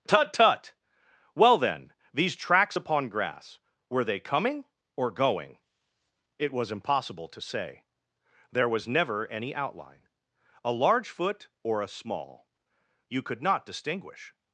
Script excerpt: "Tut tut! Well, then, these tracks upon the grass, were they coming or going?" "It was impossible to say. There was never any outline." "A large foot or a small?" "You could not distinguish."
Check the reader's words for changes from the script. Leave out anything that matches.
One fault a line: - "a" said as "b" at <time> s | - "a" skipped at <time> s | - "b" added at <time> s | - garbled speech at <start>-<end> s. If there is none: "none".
- "the" skipped at 3.1 s